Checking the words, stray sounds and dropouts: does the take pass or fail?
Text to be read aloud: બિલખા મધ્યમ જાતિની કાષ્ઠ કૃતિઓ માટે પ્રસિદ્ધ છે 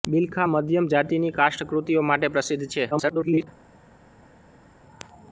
fail